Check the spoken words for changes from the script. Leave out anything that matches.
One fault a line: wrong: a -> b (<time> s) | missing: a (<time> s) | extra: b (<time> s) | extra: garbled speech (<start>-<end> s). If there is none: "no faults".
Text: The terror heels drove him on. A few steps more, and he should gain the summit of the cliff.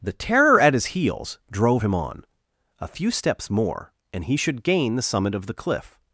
extra: at his (0.6 s)